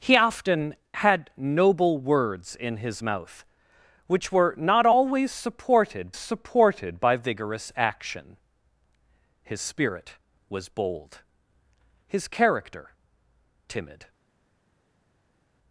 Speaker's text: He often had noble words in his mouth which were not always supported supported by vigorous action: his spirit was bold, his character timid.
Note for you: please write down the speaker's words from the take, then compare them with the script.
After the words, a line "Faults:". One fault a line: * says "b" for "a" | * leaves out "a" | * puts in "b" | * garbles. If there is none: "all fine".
He often had noble words in his mouth which were not always supported supported by vigorous action: his spirit was bold, his character timid.
Faults:
all fine